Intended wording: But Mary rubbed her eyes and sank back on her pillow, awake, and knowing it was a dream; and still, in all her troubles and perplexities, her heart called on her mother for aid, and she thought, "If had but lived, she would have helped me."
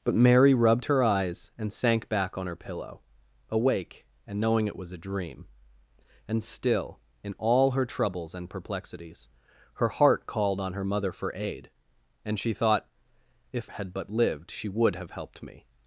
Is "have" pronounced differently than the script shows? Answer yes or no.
no